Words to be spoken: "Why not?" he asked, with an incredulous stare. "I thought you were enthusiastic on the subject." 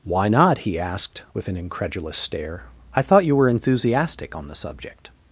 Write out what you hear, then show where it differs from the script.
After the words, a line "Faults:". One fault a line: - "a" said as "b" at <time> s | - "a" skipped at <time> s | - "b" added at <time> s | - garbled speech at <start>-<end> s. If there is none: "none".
"Why not?" he asked, with an incredulous stare. "I thought you were enthusiastic on the subject."
Faults:
none